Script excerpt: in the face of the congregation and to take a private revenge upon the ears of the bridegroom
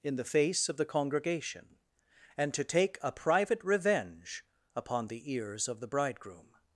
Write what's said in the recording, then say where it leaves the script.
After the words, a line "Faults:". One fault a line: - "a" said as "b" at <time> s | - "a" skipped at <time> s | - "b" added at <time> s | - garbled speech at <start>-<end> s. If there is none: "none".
in the face of the congregation and to take a private revenge upon the ears of the bridegroom
Faults:
none